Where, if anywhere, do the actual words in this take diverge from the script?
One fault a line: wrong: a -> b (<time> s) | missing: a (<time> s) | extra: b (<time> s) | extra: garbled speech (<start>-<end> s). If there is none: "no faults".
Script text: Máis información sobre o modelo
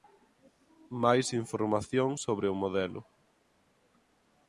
no faults